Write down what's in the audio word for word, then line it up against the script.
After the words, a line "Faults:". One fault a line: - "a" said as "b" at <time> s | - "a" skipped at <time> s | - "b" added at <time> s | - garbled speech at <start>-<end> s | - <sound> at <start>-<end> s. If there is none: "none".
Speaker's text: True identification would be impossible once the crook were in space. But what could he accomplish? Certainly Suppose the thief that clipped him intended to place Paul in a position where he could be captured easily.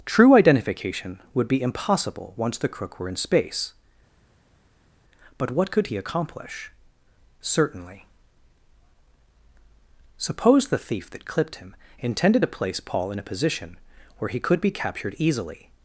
True identification would be impossible once the crook were in space. But what could he accomplish? Certainly Suppose the thief that clipped him intended to place Paul in a position where he could be captured easily.
Faults:
none